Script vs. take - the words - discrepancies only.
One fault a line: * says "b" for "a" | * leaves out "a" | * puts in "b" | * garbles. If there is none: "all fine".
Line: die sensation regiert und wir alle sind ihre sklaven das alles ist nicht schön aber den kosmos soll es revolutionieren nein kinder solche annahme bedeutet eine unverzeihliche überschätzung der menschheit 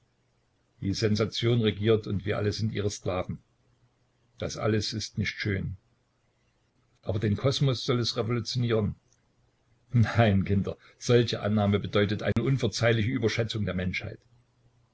all fine